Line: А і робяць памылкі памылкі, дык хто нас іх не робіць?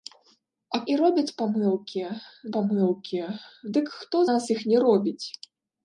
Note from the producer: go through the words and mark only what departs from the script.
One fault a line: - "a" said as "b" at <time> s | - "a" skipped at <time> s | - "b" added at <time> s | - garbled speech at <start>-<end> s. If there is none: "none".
none